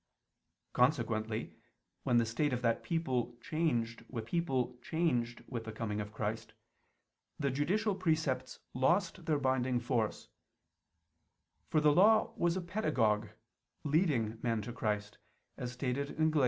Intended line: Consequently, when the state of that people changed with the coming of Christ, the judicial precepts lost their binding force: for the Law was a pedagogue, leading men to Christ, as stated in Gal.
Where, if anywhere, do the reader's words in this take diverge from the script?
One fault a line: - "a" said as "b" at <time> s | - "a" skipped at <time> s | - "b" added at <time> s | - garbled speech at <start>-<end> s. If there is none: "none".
- "people changed with" added at 4.2 s